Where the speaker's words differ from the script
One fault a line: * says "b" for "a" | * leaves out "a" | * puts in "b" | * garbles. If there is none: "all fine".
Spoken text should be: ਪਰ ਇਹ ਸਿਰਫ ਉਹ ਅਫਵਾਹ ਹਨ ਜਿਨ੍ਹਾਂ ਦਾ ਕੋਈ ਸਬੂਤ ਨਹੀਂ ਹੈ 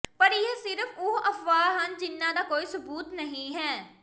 all fine